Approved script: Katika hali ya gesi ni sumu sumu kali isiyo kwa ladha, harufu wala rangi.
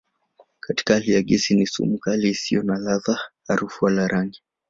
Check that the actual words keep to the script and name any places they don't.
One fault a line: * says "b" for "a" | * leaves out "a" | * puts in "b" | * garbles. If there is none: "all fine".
* leaves out "sumu"
* says "na" for "kwa"